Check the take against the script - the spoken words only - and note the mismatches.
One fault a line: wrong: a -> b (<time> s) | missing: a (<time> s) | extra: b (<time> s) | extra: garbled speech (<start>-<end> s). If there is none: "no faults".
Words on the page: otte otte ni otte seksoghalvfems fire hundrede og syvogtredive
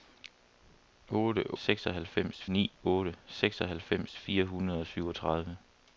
wrong: otte -> seksoghalvfems (1.6 s)